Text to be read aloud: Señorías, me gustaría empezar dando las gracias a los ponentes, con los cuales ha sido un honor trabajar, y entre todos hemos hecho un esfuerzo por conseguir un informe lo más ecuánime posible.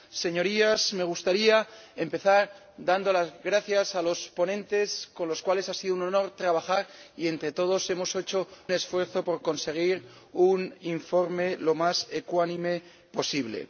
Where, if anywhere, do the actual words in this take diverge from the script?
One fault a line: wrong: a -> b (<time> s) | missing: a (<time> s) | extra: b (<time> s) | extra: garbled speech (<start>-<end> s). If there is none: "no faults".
missing: un (8.5 s)